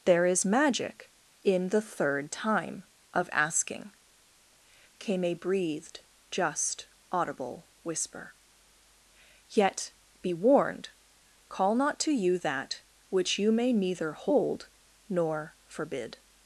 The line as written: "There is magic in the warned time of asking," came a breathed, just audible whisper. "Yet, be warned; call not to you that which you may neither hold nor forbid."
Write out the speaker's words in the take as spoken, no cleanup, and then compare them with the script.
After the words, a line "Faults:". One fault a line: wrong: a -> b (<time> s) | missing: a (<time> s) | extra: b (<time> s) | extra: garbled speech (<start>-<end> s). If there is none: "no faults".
"There is magic in the third time of asking," came a breathed, just audible whisper. "Yet, be warned; call not to you that which you may neither hold nor forbid."
Faults:
wrong: warned -> third (1.8 s)